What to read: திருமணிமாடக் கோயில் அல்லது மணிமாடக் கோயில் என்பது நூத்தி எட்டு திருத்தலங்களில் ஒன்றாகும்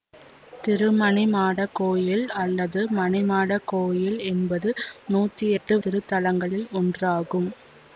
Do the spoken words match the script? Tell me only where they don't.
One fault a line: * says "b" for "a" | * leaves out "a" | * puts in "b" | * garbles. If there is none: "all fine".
all fine